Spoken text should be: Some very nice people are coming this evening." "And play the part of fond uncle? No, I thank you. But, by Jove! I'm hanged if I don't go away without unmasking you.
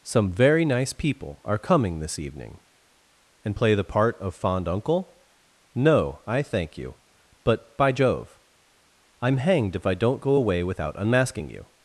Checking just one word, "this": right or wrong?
right